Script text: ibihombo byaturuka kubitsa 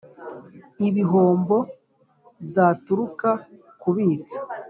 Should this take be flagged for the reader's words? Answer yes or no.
no